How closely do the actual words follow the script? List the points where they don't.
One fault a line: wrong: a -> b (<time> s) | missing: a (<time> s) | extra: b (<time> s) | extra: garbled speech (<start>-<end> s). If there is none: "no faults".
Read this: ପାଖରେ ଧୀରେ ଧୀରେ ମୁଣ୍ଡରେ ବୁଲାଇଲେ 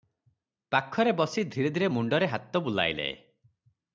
extra: ବସି (1.1 s)
extra: ହାତ (2.3 s)